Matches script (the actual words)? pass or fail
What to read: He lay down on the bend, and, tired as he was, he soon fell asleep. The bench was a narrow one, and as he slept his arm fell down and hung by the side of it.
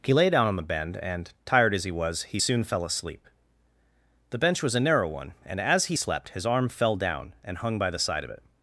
pass